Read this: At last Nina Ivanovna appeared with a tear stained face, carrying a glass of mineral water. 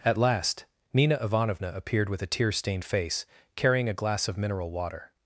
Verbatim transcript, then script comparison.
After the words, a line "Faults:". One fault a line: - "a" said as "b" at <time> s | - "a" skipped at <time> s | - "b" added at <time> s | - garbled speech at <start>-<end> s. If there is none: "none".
At last Nina Ivanovna appeared with a tear stained face, carrying a glass of mineral water.
Faults:
none